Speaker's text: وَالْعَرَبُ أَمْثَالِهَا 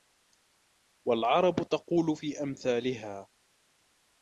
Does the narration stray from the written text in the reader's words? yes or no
yes